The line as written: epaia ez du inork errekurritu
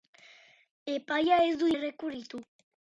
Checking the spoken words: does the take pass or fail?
fail